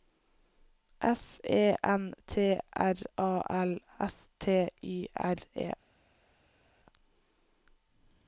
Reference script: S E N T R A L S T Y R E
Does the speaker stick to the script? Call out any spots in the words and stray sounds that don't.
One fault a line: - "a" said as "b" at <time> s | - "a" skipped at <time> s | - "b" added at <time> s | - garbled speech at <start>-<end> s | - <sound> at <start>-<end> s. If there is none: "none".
none